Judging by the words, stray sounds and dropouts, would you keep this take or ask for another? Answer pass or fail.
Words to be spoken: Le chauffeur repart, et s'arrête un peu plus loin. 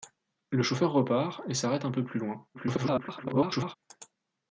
fail